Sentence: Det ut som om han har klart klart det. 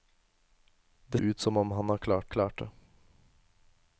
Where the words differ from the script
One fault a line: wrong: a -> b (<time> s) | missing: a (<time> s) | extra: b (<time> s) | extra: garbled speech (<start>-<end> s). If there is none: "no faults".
no faults